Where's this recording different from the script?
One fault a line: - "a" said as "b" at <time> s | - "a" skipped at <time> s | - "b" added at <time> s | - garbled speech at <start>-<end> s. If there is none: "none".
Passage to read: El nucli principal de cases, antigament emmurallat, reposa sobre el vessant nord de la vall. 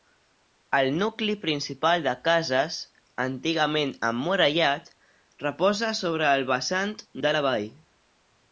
- "nord" skipped at 7.0 s